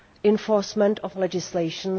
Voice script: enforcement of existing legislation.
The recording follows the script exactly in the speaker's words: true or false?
false